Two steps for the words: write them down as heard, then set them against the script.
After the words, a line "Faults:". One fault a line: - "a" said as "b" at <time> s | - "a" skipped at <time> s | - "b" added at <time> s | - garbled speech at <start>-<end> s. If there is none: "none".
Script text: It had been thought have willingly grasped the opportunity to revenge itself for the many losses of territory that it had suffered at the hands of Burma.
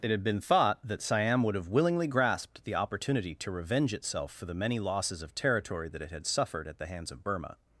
It had been thought that Siam would have willingly grasped the opportunity to revenge itself for the many losses of territory that it had suffered at the hands of Burma.
Faults:
- "that Siam would" added at 0.8 s